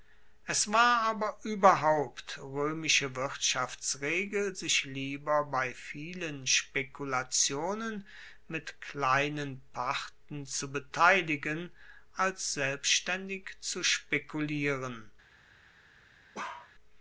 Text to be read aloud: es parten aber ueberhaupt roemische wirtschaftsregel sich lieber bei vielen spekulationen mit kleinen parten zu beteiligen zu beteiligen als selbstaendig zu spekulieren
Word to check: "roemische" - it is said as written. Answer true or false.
true